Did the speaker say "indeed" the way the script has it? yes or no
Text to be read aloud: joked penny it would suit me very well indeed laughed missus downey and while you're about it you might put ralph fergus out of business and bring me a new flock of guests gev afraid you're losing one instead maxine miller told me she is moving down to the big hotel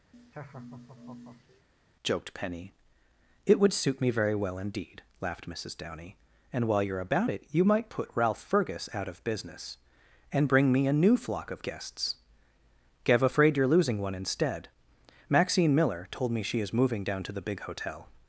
yes